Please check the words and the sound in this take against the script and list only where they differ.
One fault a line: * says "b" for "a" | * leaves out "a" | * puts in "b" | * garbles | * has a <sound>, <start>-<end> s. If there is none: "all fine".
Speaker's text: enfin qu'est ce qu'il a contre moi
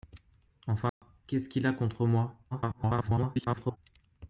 * has a dropout, 0.9-1.0 s
* garbles